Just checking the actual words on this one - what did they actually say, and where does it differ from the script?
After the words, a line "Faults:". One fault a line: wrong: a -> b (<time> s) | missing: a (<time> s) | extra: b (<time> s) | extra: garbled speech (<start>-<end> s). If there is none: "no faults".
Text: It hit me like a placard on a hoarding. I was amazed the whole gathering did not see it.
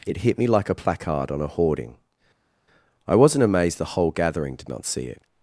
It hit me like a placard on a hoarding. I wasn't amazed the whole gathering did not see it.
Faults:
wrong: was -> wasn't (3.2 s)